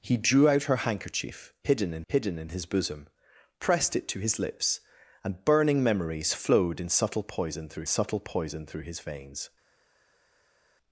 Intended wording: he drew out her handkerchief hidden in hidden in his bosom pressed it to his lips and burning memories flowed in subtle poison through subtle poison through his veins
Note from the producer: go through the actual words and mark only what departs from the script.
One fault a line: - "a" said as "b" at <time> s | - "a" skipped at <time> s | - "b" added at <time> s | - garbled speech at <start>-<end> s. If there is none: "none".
none